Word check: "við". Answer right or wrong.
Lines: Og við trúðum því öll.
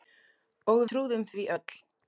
wrong